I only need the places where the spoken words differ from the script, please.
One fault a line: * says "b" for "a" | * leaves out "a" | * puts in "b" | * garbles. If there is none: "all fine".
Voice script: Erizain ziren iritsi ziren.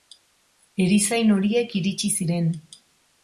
* says "horiek" for "ziren"